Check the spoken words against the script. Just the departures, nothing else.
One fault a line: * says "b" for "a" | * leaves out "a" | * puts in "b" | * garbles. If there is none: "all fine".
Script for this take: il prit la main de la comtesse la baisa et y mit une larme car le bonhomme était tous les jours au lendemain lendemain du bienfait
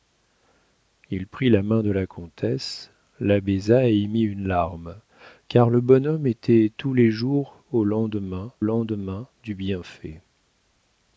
all fine